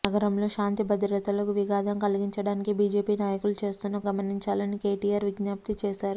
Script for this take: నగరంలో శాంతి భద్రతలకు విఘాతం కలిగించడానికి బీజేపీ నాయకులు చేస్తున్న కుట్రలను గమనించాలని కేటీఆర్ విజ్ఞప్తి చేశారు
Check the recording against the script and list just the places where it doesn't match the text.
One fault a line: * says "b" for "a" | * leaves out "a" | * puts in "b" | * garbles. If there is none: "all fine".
* leaves out "కుట్రలను"